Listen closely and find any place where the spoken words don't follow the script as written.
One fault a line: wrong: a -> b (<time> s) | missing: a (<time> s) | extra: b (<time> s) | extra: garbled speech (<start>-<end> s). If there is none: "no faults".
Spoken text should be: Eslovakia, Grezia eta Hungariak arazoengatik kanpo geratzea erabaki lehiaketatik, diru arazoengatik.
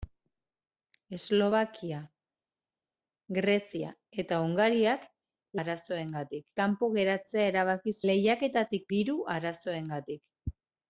no faults